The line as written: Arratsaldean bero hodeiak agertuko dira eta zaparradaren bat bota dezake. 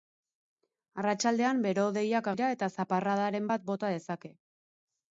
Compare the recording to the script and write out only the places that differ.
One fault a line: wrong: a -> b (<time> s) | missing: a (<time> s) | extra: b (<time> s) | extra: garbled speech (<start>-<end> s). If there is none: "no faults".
missing: agertuko (2.3 s)